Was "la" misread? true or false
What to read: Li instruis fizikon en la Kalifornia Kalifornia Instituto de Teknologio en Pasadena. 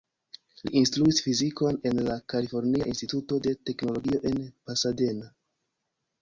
false